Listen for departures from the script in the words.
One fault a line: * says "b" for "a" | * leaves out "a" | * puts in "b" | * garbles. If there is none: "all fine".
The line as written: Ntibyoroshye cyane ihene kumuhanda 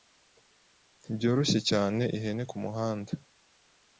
all fine